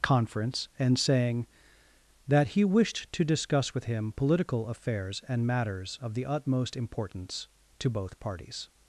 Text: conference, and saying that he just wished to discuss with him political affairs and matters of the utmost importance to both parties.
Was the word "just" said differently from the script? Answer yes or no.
yes